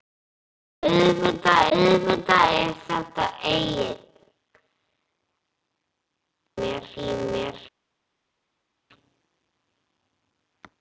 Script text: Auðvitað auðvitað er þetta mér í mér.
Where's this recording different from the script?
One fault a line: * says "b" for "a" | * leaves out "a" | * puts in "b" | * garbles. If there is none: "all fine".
all fine